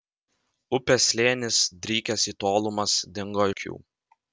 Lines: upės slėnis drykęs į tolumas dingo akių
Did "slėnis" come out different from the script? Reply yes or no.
no